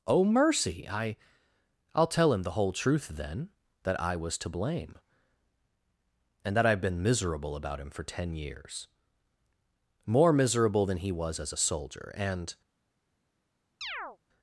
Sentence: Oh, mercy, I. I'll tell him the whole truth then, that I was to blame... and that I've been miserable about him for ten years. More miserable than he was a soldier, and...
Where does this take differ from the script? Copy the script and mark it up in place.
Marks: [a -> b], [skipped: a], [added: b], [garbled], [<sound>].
Oh, mercy, I. I'll tell him the whole truth then, that I was to blame... and that I've been miserable about him for ten years. More miserable than he was [added: as] a soldier, and... [chirp]